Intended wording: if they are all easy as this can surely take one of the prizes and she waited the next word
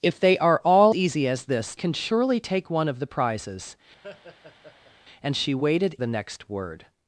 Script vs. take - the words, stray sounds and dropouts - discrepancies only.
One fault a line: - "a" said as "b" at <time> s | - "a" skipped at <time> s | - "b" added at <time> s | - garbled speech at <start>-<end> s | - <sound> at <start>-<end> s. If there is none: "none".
- laugh at 4.0-4.9 s